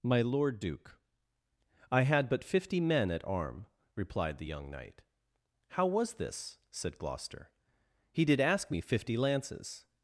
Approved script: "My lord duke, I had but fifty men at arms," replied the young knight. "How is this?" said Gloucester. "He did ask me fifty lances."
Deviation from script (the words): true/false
true